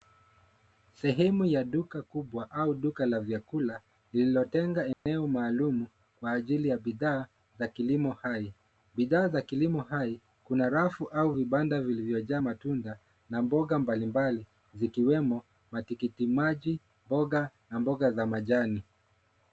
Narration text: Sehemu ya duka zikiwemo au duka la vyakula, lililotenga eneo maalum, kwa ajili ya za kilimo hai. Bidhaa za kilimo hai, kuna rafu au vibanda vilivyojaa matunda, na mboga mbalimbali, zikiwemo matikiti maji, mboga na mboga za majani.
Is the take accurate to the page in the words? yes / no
no